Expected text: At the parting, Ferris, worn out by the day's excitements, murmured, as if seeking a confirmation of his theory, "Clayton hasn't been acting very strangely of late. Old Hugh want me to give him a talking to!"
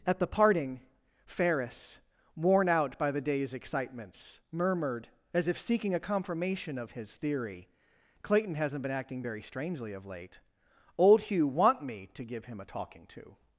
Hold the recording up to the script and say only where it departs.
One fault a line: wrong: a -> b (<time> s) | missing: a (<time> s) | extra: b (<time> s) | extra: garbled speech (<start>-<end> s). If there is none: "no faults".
no faults